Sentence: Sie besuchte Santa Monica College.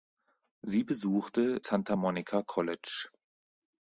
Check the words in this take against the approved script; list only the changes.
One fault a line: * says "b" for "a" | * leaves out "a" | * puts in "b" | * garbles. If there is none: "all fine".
all fine